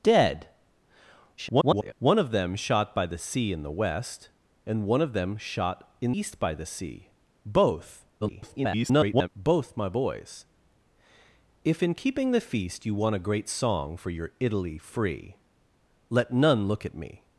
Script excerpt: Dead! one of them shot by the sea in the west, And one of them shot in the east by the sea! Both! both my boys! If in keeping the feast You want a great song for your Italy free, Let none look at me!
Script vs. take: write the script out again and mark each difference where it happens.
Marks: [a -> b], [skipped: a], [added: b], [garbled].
Dead! [garbled] one of them shot by the sea in the west, And one of them shot in [skipped: the] east by the sea! Both! [garbled] both my boys! If in keeping the feast You want a great song for your Italy free, Let none look at me!